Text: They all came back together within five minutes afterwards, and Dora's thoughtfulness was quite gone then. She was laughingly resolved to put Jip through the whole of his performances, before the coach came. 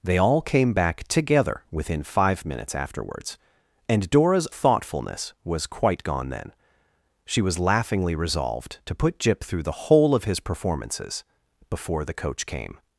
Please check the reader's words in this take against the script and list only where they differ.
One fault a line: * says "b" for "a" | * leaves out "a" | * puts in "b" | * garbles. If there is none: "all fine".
all fine